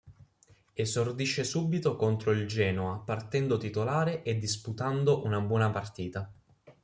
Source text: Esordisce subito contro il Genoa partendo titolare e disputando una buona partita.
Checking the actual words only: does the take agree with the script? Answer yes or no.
yes